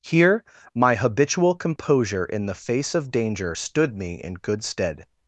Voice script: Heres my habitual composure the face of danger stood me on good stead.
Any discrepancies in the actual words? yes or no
yes